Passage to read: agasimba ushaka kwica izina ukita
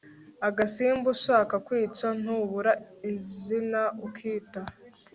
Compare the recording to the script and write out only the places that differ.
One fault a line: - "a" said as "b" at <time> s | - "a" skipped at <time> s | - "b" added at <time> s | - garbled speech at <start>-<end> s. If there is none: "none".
- "ntubura" added at 2.2 s